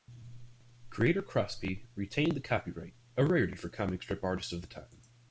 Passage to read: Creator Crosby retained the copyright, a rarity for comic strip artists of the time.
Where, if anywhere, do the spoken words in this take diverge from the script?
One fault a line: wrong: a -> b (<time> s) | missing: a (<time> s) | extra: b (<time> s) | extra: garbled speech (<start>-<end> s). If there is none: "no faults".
no faults